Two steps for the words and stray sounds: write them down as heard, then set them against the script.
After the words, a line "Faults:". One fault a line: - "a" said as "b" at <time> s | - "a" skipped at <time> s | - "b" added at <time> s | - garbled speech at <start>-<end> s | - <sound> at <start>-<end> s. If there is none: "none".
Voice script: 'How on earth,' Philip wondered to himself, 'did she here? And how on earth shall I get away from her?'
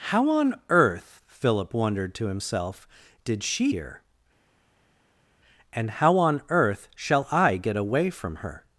'How on earth,' Philip wondered to himself, 'did she here? And how on earth shall I get away from her?'
Faults:
none